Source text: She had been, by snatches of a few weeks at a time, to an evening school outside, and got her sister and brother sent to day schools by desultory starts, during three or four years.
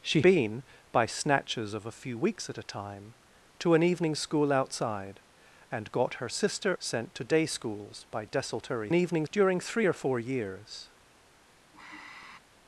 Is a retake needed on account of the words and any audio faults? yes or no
yes